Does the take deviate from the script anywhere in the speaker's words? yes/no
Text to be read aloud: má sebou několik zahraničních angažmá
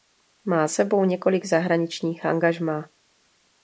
no